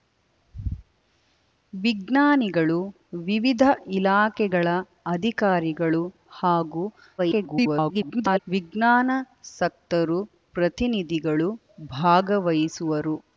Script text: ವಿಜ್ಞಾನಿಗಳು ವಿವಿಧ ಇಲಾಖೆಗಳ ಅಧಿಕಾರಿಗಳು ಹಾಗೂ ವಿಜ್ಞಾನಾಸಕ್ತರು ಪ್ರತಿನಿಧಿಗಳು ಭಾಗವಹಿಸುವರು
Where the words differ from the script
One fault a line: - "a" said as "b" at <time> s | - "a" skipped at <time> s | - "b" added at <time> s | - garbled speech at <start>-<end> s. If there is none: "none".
- garbled speech at 7.2-8.4 s